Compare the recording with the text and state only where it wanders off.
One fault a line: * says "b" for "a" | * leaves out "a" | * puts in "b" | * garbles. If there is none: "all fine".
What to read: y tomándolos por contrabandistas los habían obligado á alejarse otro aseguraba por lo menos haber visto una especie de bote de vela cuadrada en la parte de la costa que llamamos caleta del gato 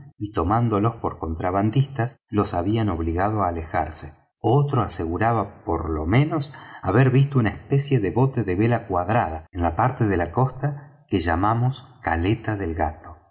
all fine